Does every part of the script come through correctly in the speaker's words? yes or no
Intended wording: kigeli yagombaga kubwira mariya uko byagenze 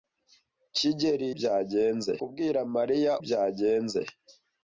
no